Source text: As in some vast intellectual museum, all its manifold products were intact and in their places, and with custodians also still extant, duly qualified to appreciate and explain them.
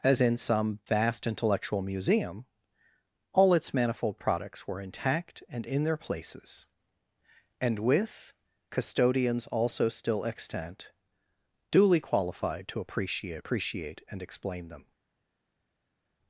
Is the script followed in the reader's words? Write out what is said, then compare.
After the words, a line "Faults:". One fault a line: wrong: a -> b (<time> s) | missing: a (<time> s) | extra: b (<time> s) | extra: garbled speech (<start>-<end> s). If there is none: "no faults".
As in some vast intellectual museum, all its manifold products were intact and in their places, and with custodians also still extant, duly qualified to appreciate appreciate and explain them.
Faults:
extra: appreciate (13.4 s)